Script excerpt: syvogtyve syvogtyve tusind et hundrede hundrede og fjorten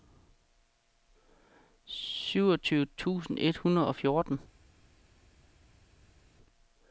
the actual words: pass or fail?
fail